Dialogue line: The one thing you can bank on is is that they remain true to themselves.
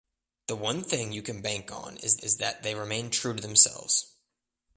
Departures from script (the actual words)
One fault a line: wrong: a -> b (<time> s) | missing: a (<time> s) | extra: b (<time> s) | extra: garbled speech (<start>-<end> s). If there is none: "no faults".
no faults